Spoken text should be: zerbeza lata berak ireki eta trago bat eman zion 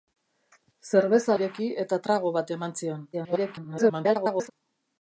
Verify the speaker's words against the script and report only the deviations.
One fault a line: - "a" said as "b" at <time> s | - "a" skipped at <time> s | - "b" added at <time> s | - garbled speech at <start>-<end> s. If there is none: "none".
- "lata berak" skipped at 1.4 s
- garbled speech at 3.1-4.5 s